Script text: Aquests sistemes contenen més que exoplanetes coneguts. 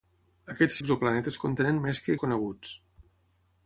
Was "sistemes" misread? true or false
true